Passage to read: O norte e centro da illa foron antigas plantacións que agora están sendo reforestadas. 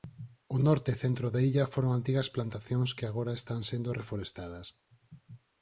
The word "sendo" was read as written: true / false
true